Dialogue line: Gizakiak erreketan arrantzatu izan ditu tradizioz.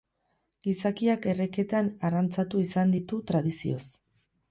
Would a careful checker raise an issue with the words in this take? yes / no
no